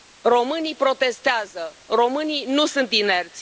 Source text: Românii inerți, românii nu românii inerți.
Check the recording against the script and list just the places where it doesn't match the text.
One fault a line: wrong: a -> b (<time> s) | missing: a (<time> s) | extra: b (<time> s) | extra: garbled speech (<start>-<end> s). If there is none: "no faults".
wrong: inerți -> protestează (0.8 s)
wrong: românii -> sunt (2.6 s)